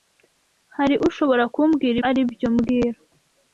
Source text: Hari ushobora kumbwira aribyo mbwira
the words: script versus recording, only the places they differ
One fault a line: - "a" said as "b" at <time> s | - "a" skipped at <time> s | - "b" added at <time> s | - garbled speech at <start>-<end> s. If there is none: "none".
none